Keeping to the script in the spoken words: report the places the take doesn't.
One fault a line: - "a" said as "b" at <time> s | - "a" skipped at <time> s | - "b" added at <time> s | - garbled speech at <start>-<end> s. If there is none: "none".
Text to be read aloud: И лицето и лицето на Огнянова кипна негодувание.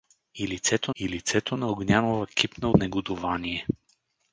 none